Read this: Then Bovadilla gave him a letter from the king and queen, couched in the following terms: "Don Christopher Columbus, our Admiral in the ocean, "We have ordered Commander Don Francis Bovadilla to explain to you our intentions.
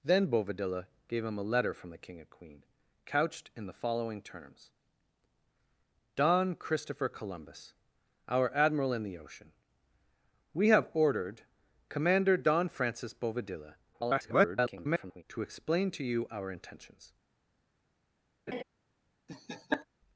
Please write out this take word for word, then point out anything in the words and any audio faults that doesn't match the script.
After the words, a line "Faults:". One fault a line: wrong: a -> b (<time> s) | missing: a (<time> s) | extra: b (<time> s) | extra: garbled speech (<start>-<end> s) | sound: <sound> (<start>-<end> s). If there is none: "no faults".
Then Bovadilla gave him a letter from the king and queen, couched in the following terms: "Don Christopher Columbus, our Admiral in the ocean, "We have ordered Commander Don Francis Bovadilla [garbled] to explain to you our intentions.
Faults:
extra: garbled speech (13.9-15.2 s)
sound: laugh (18.5-18.6 s)
sound: laugh (19.3-19.9 s)